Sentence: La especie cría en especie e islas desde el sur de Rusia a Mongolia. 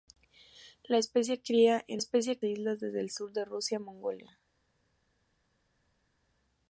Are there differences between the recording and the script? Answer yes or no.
no